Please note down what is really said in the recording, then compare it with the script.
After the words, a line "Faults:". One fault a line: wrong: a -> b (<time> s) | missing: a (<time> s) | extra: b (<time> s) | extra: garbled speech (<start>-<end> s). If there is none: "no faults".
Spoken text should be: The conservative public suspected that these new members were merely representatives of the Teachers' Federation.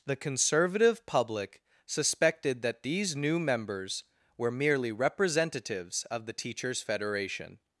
The conservative public suspected that these new members were merely representatives of the Teachers' Federation.
Faults:
no faults